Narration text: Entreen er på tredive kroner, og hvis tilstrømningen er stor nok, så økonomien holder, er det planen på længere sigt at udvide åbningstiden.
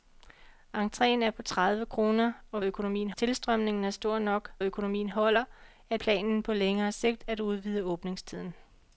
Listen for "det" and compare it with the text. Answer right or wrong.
wrong